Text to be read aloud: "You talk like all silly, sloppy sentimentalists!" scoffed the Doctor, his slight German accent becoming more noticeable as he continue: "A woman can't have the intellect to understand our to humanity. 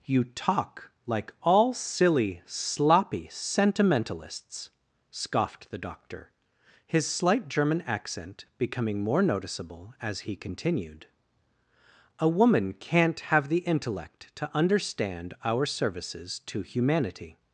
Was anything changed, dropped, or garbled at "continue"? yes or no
yes